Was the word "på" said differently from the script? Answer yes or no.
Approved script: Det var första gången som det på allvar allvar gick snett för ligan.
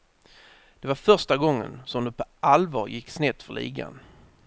no